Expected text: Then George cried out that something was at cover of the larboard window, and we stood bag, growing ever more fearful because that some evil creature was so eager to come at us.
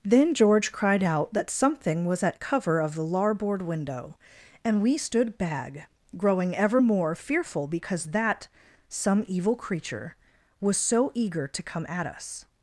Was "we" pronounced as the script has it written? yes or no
yes